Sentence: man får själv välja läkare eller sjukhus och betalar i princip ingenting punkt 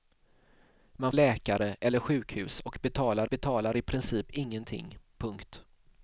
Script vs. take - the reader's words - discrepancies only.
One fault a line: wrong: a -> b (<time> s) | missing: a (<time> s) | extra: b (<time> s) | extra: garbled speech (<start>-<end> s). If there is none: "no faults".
missing: får själv välja (1.1 s)
extra: betalar (3.3 s)